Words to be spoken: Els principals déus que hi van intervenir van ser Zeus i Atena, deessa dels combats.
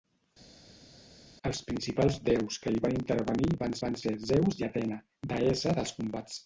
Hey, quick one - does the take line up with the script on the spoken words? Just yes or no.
no